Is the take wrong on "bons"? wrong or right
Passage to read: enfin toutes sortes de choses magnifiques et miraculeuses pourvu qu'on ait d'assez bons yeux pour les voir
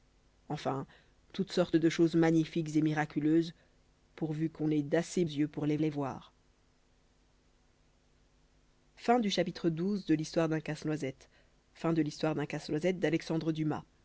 wrong